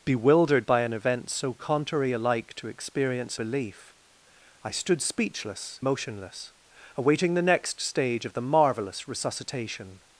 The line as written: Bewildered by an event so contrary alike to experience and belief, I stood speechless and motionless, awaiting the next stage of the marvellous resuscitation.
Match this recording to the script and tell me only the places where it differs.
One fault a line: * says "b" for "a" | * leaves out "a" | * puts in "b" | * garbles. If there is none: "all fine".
* leaves out "and"
* leaves out "and"